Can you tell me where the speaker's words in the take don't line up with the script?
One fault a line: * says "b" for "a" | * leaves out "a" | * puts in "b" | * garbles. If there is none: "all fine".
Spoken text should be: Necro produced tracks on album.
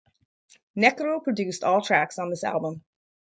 * puts in "all"
* puts in "this"